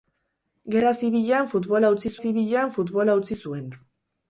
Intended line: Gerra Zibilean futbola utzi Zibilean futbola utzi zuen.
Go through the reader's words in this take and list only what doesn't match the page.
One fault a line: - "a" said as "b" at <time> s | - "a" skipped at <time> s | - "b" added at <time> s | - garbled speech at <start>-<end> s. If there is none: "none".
none